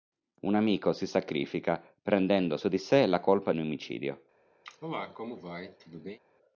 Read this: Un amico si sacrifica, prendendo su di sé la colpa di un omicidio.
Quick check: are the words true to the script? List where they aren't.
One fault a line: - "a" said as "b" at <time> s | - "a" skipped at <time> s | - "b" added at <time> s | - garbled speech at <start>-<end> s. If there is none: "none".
- "di" skipped at 3.5 s